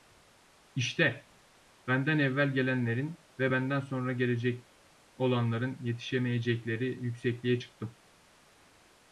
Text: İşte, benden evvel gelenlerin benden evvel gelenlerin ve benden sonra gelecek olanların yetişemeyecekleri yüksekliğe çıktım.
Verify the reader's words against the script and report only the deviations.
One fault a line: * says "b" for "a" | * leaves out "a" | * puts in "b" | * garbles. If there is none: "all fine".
* leaves out "benden evvel gelenlerin"